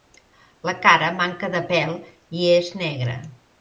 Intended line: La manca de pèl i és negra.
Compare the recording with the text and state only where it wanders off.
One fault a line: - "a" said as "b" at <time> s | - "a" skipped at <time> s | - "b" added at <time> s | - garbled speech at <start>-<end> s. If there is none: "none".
- "cara" added at 0.8 s